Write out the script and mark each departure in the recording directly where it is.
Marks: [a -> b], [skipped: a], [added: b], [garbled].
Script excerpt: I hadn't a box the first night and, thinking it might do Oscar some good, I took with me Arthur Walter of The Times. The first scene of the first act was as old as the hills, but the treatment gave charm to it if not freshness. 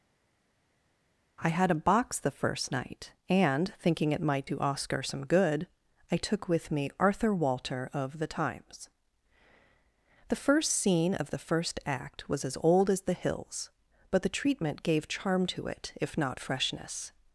I [hadn't -> had] a box the first night and, thinking it might do Oscar some good, I took with me Arthur Walter of The Times. The first scene of the first act was as old as the hills, but the treatment gave charm to it if not freshness.